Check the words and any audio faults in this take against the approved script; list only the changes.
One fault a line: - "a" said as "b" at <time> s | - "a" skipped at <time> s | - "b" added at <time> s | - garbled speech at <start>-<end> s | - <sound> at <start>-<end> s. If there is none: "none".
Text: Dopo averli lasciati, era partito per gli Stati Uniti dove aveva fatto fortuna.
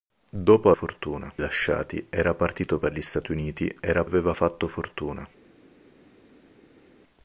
- "averli" said as "fortuna" at 0.7 s
- "dove" said as "era" at 3.8 s